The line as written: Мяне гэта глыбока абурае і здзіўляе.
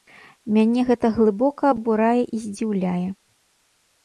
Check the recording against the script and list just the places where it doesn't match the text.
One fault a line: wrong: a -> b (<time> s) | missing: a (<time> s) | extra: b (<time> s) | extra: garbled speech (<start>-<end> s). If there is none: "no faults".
no faults